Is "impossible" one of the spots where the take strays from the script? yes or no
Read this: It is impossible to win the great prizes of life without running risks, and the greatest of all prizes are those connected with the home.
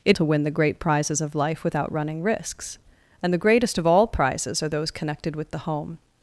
yes